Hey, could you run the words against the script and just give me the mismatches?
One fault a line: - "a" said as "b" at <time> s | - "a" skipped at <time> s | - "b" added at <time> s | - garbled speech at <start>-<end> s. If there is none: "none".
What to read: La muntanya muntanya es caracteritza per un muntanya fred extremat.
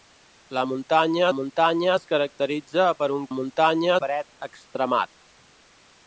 none